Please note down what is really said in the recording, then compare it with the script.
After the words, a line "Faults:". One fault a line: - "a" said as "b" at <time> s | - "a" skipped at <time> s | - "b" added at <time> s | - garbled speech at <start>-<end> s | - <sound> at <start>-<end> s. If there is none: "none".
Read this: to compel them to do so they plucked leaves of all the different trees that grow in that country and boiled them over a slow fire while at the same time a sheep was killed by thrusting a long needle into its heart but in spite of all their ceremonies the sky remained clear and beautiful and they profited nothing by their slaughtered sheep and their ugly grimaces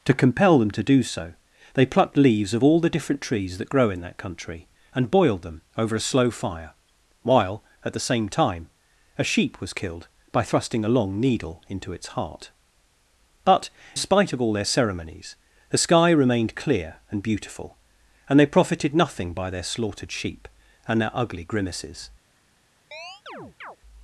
to compel them to do so they plucked leaves of all the different trees that grow in that country and boiled them over a slow fire while at the same time a sheep was killed by thrusting a long needle into its heart but spite of all their ceremonies the sky remained clear and beautiful and they profited nothing by their slaughtered sheep and their ugly grimaces
Faults:
- "in" skipped at 13.7 s
- chirp at 22.9-23.8 s